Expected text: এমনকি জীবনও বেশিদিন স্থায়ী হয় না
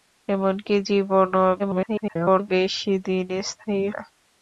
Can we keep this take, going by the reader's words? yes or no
no